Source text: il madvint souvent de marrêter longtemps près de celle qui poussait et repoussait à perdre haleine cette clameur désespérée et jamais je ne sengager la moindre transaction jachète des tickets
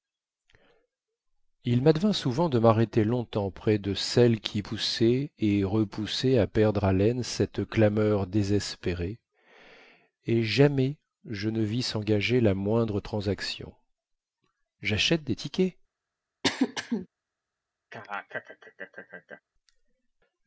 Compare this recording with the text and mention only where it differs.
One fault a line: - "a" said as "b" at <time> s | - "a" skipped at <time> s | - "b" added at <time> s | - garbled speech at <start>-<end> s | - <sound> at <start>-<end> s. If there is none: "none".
- "vis" added at 11.6 s
- throat clearing at 16.4-17.1 s
- laugh at 17.9-19.4 s